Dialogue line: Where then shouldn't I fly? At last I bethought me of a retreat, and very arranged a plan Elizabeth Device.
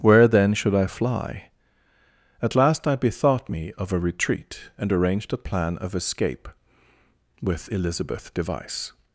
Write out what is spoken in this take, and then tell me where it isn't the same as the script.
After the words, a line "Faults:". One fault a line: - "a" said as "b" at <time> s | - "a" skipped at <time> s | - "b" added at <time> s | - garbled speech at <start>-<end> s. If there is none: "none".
Where then should I fly? At last I bethought me of a retreat, and arranged a plan of escape with Elizabeth Device.
Faults:
- "shouldn't" said as "should" at 0.6 s
- "very" skipped at 4.9 s
- "of escape with" added at 5.8 s